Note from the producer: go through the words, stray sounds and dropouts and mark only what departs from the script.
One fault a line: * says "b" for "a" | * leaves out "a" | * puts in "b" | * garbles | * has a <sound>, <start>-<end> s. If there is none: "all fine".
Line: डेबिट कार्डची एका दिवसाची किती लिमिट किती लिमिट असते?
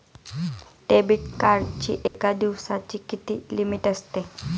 * has a dropout, 2.1-2.1 s
* leaves out "किती लिमिट"